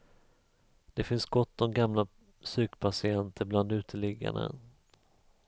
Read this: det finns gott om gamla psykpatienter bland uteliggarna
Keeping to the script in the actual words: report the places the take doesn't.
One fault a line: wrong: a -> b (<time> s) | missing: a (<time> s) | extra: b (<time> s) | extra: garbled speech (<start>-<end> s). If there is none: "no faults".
no faults